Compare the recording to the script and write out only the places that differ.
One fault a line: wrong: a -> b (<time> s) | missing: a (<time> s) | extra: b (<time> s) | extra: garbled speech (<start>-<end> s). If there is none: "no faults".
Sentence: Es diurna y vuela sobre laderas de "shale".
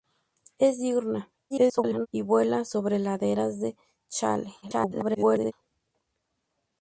extra: garbled speech (1.5-2.1 s)
extra: garbled speech (4.6-5.5 s)